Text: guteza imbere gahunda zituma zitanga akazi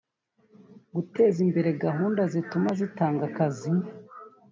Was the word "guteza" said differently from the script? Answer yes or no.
no